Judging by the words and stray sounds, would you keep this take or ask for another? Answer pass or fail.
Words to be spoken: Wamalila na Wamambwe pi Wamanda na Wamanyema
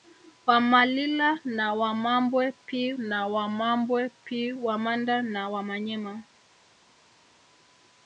fail